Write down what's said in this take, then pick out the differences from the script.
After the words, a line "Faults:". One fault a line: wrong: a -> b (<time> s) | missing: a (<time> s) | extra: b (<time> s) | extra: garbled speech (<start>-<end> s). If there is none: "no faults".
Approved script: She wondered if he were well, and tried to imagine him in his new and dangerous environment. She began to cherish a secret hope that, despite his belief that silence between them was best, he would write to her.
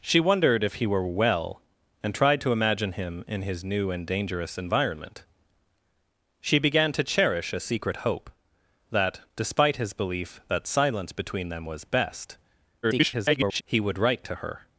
She wondered if he were well, and tried to imagine him in his new and dangerous environment. She began to cherish a secret hope that, despite his belief that silence between them was best, [garbled] he would write to her.
Faults:
extra: garbled speech (12.8-13.6 s)